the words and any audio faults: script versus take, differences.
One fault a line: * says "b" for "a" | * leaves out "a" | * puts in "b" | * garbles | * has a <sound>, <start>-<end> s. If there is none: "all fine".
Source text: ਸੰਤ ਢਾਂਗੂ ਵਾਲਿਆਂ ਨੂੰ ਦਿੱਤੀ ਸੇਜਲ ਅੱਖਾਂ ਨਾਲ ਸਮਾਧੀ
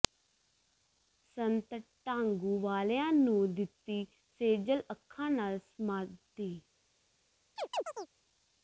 * has a chirp, 7.6-8.1 s